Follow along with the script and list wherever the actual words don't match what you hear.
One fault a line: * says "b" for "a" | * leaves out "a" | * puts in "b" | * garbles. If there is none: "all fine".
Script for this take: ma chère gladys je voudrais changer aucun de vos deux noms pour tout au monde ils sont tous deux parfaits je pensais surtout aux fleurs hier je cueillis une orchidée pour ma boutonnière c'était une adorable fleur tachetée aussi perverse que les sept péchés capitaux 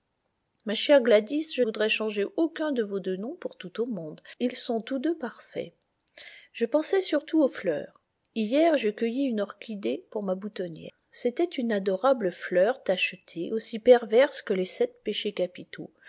all fine